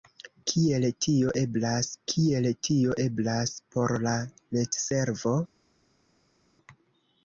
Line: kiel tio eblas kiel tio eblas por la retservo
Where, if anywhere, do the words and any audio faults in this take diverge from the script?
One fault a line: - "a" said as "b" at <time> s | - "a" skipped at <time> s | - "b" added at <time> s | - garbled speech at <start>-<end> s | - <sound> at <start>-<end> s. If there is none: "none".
none